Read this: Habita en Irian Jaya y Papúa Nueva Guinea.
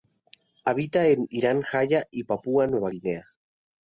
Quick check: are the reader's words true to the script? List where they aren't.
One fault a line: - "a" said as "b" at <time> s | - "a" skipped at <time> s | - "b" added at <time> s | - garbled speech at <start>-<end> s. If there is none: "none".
none